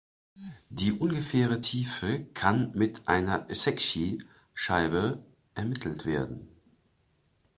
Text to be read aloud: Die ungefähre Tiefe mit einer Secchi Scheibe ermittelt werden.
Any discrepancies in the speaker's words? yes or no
yes